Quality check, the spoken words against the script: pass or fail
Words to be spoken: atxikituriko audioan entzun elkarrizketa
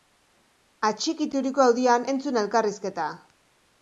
pass